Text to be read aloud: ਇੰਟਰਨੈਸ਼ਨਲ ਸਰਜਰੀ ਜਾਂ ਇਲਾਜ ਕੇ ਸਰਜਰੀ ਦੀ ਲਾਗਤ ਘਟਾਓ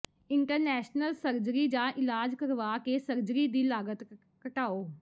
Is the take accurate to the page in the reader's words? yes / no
no